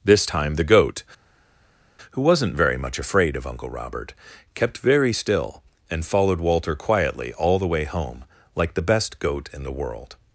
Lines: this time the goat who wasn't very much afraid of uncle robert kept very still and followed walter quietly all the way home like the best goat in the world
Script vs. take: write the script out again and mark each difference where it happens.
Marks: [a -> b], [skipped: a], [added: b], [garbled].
this time the goat who wasn't very much afraid of uncle robert kept very still and followed walter quietly all the way home like the best goat in the world